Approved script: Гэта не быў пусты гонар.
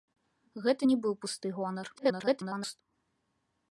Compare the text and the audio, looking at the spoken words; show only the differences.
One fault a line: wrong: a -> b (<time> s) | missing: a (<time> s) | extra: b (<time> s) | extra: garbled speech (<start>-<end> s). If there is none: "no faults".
extra: garbled speech (2.0-2.8 s)